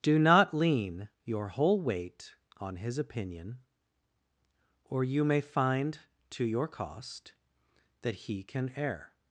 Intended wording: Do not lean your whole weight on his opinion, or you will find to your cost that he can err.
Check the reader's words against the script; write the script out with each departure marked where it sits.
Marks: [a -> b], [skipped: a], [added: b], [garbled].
Do not lean your whole weight on his opinion, or you [will -> may] find to your cost that he can err.